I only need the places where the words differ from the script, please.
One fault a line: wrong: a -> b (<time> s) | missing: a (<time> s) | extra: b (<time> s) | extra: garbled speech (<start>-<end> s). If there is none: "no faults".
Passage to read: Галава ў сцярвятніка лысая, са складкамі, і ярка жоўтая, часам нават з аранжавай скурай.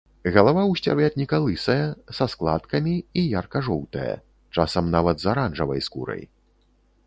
no faults